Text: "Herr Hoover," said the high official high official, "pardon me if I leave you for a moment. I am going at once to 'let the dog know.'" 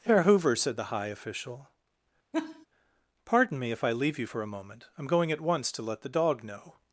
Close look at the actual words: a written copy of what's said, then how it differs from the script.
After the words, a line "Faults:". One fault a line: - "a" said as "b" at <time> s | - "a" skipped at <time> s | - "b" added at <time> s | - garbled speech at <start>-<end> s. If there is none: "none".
"Herr Hoover," said the high official, "pardon me if I leave you for a moment. I am going at once to 'let the dog know.'"
Faults:
- "high official" skipped at 1.7 s